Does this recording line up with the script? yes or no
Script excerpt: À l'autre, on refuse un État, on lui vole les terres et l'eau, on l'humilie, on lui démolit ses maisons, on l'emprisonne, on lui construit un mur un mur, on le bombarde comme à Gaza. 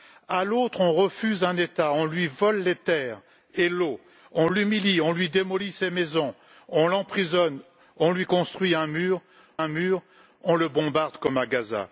yes